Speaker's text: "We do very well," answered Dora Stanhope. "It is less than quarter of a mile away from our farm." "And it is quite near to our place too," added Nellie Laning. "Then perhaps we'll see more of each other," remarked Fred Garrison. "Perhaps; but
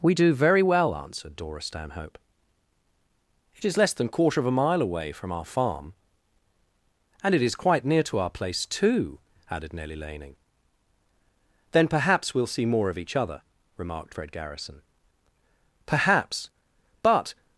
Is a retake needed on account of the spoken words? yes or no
no